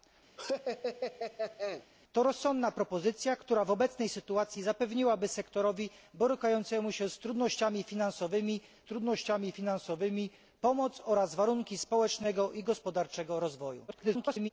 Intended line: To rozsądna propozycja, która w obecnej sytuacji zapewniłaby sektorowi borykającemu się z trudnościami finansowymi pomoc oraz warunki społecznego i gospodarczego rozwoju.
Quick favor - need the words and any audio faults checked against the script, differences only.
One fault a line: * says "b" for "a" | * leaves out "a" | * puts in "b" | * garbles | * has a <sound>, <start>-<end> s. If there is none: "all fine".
* has a laugh, 0.4-1.9 s
* puts in "trudnościami finansowymi"
* garbles